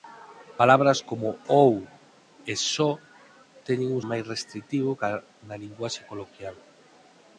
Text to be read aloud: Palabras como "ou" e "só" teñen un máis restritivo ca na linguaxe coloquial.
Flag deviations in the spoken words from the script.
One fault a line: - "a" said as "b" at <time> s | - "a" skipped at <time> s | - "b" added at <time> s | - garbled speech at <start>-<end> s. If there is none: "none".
none